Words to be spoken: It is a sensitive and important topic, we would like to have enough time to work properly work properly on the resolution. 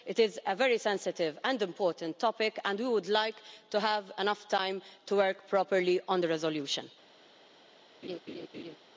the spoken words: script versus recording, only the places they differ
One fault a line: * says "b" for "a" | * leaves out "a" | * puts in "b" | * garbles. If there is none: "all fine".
* puts in "very"
* puts in "and"
* leaves out "work properly"